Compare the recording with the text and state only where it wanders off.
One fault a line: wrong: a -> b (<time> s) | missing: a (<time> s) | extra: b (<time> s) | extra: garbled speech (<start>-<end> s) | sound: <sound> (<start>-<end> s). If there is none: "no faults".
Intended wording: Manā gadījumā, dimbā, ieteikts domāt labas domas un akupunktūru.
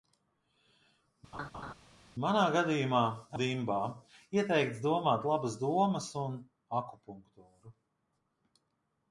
sound: laugh (1.3-1.7 s)